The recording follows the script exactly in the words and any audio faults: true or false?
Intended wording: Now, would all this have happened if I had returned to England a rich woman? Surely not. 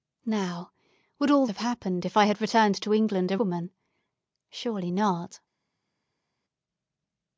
false